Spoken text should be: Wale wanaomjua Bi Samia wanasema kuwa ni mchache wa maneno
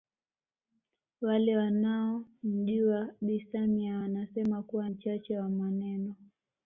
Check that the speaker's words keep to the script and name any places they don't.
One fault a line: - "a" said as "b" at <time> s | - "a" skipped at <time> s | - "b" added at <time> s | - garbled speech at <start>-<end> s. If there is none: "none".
- "ni" skipped at 4.9 s